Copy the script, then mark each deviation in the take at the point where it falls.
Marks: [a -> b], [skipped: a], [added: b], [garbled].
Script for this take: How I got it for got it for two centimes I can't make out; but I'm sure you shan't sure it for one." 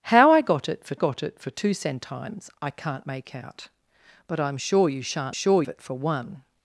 How I got it for got it for two centimes I can't make out; but I'm sure you shan't sure it for one."